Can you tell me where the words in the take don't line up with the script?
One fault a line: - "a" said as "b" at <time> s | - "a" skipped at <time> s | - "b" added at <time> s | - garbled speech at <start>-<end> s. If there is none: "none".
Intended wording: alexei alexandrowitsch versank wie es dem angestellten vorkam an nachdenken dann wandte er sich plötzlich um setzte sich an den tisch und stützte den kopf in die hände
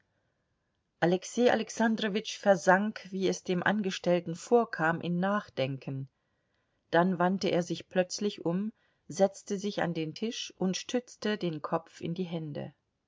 - "an" said as "in" at 5.0 s